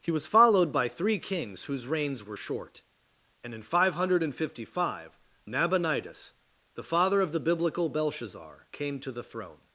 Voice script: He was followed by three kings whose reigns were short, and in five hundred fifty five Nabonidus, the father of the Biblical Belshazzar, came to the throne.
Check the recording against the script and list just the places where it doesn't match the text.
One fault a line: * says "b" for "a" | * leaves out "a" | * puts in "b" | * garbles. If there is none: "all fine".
all fine